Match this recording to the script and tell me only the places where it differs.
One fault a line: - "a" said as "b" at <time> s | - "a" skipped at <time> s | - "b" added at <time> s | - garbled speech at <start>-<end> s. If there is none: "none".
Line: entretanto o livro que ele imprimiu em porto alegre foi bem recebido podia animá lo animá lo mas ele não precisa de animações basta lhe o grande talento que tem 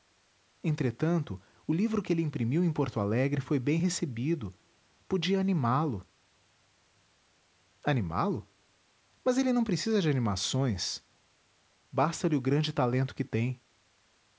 none